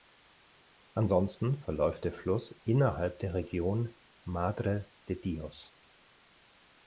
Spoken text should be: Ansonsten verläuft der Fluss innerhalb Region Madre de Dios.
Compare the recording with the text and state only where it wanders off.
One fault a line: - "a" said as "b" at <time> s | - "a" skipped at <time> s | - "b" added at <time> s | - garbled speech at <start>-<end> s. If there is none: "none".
- "der" added at 3.2 s